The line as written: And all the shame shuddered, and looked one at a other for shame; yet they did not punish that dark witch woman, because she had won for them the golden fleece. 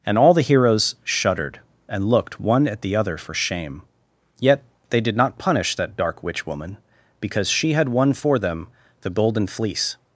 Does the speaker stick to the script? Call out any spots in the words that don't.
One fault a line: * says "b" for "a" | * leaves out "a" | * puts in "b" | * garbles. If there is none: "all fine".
* says "heroes" for "shame"
* says "the" for "a"